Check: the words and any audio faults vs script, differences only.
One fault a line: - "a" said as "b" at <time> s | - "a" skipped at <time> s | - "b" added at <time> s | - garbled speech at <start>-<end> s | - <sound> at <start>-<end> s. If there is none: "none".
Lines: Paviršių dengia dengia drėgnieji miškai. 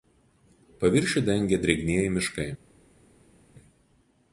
- "dengia" skipped at 1.6 s